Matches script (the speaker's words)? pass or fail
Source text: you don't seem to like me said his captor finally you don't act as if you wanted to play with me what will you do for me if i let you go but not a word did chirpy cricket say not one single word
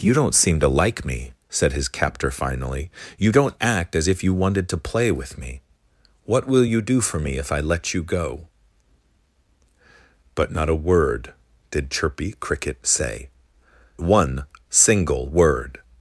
fail